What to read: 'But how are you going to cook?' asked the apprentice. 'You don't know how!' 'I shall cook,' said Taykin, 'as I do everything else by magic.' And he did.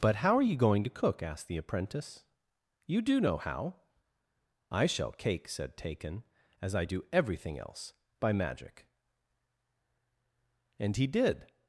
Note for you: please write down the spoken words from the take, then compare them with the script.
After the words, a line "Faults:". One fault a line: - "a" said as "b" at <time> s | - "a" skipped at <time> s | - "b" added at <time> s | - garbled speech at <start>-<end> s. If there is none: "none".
'But how are you going to cook?' asked the apprentice. 'You do know how!' 'I shall cake,' said Taykin, 'as I do everything else by magic.' And he did.
Faults:
- "don't" said as "do" at 3.0 s
- "cook" said as "cake" at 5.1 s